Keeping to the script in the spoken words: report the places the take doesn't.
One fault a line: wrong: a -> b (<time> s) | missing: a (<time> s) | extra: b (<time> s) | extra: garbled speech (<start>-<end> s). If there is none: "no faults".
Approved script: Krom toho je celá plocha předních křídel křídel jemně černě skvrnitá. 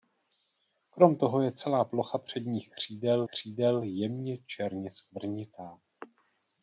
no faults